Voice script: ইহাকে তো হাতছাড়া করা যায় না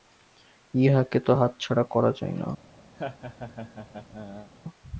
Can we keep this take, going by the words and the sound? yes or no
no